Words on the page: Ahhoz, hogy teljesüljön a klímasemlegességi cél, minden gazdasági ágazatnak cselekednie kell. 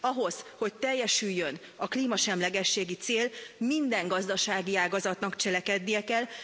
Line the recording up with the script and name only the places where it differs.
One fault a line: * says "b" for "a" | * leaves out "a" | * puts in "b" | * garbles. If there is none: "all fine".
all fine